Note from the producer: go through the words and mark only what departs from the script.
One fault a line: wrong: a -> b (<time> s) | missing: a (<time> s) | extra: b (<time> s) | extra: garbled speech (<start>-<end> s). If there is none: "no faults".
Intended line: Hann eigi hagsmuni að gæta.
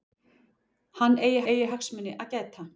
extra: eigi (1.5 s)